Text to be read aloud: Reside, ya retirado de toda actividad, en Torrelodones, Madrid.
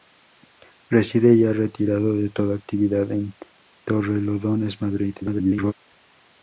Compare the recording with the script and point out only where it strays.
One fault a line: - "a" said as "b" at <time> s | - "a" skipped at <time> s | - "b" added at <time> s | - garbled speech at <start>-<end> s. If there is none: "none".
- garbled speech at 5.2-5.7 s